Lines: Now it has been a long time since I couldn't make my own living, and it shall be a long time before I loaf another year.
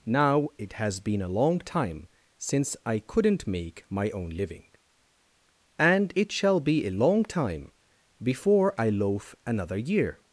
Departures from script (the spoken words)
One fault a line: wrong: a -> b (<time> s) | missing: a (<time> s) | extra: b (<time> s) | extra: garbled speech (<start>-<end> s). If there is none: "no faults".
no faults